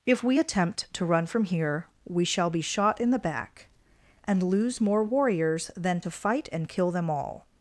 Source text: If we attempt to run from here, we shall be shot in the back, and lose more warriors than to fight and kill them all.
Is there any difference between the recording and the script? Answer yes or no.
no